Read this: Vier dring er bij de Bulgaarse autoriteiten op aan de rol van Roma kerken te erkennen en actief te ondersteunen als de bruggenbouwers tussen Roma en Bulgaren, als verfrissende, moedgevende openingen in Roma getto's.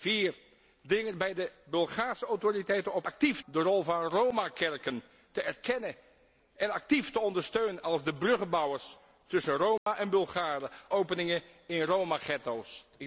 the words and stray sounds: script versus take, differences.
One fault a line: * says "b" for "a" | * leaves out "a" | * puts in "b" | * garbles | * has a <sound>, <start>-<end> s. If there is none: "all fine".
* says "actief" for "aan"
* has a dropout, 9.8-9.9 s
* leaves out "als verfrissende moedgevende"